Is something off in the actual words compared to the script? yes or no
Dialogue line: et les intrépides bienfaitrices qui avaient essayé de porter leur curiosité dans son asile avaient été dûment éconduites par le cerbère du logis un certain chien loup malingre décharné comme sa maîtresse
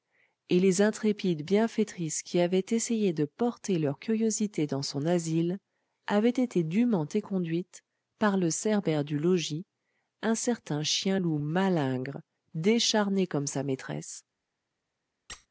no